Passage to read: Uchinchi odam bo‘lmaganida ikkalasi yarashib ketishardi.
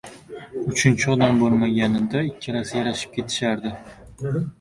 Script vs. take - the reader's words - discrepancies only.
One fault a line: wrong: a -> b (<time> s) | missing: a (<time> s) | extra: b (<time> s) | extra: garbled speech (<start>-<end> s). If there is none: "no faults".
no faults